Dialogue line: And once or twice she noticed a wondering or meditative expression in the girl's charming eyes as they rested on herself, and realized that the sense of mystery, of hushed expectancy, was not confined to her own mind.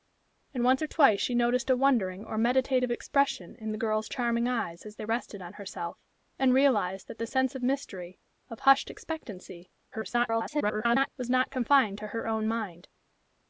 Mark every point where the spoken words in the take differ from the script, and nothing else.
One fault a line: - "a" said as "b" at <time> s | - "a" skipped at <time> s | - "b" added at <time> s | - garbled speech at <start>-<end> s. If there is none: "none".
- garbled speech at 9.9-11.1 s